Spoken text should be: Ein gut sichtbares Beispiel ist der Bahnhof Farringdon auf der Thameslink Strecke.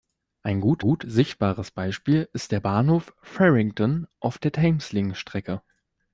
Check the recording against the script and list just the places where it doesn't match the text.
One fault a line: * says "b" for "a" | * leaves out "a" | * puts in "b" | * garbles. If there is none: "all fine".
* puts in "gut"